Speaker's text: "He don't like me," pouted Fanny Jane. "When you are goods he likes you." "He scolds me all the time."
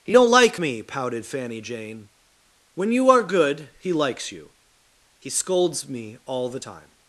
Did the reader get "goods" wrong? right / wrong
wrong